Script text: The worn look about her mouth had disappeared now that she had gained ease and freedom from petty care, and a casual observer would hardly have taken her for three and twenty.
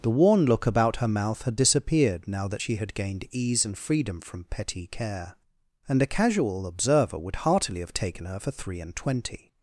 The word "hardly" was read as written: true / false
false